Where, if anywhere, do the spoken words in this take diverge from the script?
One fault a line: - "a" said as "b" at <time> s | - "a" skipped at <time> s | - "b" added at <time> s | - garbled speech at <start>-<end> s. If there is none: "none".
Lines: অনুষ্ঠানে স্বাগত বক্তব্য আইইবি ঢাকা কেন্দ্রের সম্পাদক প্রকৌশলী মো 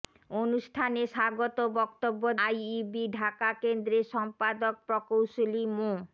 none